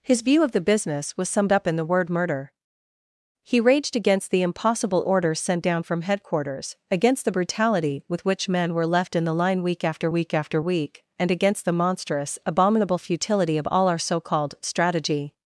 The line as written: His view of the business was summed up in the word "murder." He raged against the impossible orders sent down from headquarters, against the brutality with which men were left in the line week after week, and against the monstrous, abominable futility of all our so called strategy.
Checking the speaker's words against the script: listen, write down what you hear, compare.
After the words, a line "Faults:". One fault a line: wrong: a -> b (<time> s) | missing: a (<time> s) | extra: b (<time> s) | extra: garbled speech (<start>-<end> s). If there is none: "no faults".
His view of the business was summed up in the word "murder." He raged against the impossible orders sent down from headquarters, against the brutality with which men were left in the line week after week after week, and against the monstrous, abominable futility of all our so called strategy.
Faults:
extra: after week (10.3 s)